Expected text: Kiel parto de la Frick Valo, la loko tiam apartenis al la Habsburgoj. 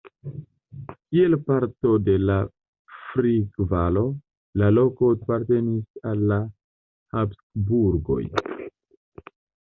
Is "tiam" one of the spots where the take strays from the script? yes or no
yes